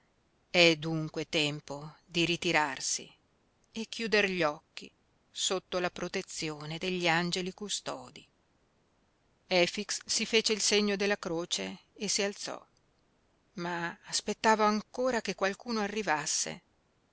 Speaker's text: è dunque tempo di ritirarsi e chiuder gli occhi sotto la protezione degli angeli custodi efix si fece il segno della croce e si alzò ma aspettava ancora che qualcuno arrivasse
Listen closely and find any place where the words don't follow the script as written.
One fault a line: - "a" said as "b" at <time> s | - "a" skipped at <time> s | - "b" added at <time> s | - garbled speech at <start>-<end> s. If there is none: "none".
none